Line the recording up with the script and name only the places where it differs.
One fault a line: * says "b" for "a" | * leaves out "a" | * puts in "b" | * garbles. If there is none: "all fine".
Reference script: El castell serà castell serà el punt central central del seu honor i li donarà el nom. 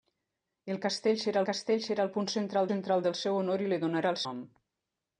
all fine